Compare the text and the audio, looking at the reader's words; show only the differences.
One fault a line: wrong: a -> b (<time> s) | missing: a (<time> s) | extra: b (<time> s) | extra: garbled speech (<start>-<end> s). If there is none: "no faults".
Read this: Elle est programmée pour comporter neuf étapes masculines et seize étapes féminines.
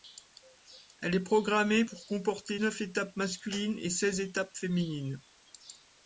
no faults